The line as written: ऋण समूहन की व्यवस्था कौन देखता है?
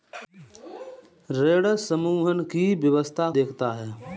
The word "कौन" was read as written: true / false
false